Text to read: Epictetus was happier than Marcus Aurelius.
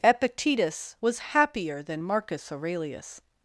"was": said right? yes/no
yes